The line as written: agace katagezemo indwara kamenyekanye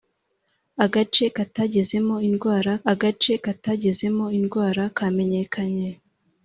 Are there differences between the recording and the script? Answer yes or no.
yes